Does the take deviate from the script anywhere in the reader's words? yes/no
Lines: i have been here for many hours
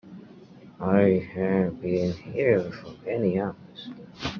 no